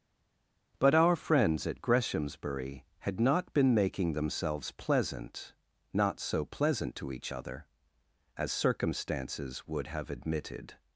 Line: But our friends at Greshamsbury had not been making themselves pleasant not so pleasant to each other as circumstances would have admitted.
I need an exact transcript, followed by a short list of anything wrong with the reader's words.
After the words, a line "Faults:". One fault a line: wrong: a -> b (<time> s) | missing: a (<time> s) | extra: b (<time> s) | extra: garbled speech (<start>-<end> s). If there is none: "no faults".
But our friends at Greshamsbury had not been making themselves pleasant not so pleasant to each other as circumstances would have admitted.
Faults:
no faults